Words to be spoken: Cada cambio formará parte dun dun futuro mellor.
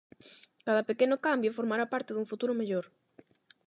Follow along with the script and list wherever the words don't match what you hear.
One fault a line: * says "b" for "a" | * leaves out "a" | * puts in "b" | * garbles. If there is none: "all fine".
* puts in "pequeno"
* leaves out "dun"